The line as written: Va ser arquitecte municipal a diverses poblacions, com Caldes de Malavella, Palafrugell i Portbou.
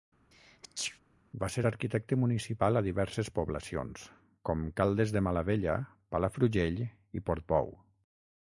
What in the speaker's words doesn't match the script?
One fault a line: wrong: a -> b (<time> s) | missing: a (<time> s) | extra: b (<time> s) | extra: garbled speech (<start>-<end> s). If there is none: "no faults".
no faults